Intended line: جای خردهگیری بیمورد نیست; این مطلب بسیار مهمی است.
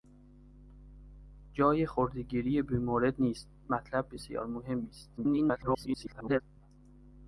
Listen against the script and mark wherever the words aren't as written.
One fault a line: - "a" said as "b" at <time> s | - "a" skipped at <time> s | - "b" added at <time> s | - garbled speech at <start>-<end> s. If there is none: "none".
- "این" skipped at 3.5 s
- garbled speech at 5.2-6.4 s